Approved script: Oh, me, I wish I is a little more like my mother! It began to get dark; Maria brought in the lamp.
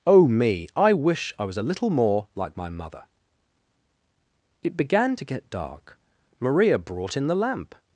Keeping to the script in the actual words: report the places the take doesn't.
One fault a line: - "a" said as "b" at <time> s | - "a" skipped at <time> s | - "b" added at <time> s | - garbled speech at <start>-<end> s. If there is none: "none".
- "is" said as "was" at 1.4 s